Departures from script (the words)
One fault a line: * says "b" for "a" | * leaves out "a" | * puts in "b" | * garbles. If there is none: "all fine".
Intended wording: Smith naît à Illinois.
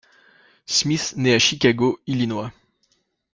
* puts in "Chicago"